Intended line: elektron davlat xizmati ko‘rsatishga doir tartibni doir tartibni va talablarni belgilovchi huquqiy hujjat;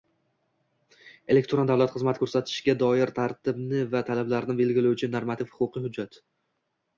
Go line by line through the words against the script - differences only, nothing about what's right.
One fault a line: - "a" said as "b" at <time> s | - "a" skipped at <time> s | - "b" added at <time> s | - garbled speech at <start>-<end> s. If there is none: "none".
- "doir tartibni" skipped at 3.8 s
- "normativ" added at 5.2 s